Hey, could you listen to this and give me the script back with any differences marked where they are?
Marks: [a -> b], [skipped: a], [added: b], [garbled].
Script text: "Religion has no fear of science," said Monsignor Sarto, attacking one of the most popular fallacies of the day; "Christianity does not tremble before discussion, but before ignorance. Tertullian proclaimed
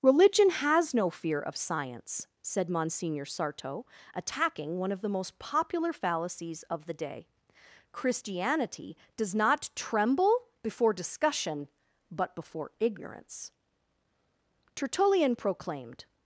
"Religion has no fear of science," said Monsignor Sarto, attacking one of the most popular fallacies of the day; "Christianity does not tremble before discussion, but before ignorance. Tertullian proclaimed